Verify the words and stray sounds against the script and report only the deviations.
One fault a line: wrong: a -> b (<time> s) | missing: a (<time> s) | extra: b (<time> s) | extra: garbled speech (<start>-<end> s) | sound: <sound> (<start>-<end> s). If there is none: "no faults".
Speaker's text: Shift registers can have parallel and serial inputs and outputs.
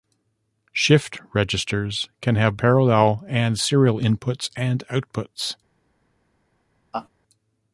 sound: laugh (6.9-7.1 s)